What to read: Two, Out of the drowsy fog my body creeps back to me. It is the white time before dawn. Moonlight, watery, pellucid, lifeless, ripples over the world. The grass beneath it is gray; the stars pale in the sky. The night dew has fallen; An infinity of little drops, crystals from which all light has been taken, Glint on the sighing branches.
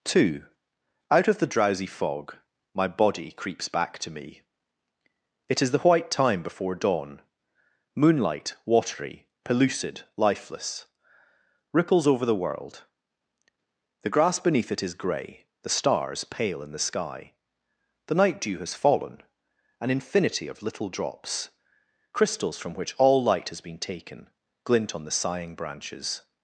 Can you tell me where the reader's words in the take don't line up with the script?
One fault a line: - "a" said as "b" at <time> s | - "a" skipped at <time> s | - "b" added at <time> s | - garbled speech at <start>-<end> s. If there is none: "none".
none